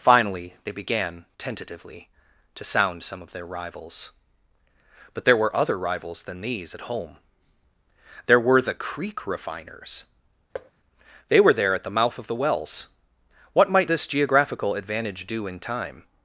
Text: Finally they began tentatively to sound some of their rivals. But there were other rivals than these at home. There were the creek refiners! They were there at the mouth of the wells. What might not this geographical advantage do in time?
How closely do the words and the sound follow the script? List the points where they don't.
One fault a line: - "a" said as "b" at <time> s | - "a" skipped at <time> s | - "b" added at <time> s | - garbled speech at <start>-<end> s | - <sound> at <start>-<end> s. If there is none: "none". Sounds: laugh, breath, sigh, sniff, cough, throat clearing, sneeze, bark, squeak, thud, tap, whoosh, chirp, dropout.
- thud at 10.5-10.7 s
- "not" skipped at 13.9 s